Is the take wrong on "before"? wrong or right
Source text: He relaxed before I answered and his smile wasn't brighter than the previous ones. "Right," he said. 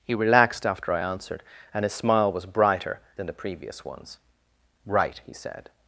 wrong